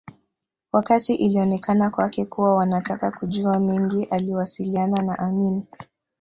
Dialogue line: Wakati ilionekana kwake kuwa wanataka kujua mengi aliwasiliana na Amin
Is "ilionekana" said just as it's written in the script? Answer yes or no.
yes